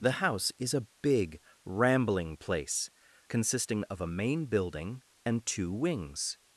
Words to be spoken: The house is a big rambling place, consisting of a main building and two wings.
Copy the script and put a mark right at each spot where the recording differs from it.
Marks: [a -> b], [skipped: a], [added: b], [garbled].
The house is a big rambling place, consisting of a main building and two wings.